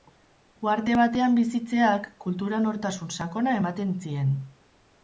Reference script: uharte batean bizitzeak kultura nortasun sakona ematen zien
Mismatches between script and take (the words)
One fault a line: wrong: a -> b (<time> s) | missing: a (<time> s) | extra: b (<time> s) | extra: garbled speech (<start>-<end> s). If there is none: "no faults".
no faults